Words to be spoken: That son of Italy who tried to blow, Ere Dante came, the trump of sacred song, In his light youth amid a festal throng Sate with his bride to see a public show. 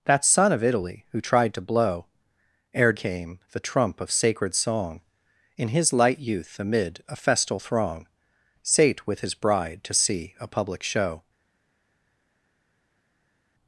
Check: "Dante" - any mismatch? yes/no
yes